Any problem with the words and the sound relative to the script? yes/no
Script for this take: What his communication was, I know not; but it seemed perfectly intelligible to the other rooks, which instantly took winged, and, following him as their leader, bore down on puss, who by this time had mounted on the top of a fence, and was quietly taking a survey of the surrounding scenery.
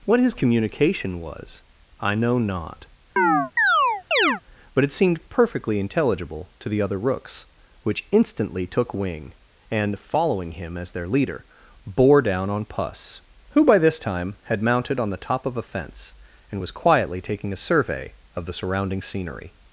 yes